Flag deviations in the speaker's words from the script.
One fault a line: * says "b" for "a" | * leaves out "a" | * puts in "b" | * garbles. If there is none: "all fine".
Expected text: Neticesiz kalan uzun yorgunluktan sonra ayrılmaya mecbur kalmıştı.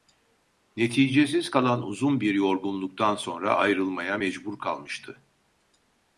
* puts in "bir"